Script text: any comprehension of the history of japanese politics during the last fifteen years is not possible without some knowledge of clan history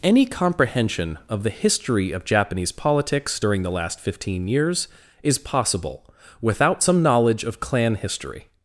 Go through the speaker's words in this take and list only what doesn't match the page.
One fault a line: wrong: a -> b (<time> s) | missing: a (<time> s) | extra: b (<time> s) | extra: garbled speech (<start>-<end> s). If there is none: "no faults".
missing: not (5.4 s)